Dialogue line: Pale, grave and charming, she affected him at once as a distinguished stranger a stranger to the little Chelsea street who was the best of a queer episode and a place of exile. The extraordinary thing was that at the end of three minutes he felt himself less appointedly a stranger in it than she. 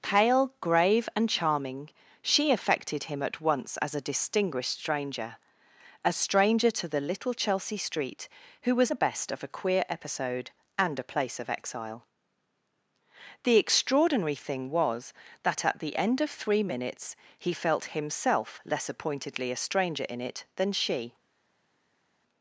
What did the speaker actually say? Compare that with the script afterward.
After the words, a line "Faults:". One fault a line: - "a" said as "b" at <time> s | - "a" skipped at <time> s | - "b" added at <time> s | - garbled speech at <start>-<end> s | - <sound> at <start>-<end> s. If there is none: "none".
Pale, grave and charming, she affected him at once as a distinguished stranger a stranger to the little Chelsea street who was the best of a queer episode and a place of exile. The extraordinary thing was that at the end of three minutes he felt himself less appointedly a stranger in it than she.
Faults:
none